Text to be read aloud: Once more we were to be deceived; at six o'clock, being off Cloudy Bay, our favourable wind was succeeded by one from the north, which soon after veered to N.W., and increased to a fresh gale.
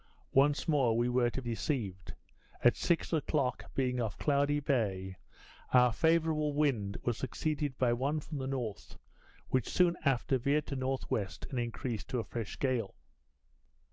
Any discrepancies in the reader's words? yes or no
yes